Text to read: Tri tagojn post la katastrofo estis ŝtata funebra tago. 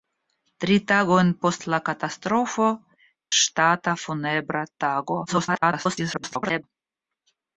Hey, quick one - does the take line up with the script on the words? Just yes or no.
no